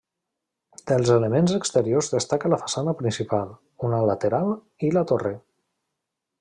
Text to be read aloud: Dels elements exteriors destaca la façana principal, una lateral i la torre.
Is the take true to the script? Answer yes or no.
yes